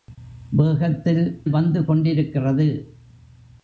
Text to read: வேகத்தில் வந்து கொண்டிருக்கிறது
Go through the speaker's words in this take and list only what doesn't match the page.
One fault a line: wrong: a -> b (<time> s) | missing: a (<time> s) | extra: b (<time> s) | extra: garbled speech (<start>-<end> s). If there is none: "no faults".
no faults